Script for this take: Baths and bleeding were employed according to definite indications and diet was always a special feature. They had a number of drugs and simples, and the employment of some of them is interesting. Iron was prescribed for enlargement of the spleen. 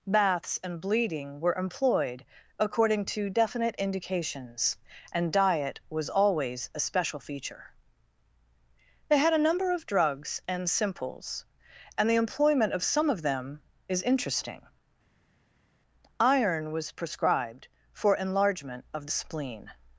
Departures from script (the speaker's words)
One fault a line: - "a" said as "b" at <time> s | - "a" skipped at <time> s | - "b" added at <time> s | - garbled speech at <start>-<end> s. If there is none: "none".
none